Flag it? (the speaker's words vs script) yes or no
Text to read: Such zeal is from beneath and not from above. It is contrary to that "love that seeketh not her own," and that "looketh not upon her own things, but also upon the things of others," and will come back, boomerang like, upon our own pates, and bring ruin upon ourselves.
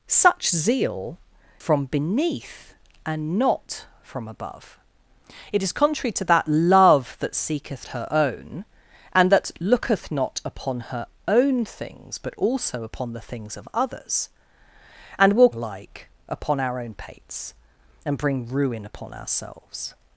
yes